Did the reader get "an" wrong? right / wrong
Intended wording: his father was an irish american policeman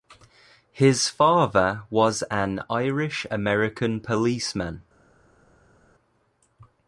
right